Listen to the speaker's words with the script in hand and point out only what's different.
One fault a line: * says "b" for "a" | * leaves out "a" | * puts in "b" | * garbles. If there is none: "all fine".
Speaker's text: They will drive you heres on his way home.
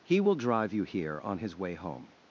* says "He" for "They"
* says "here" for "heres"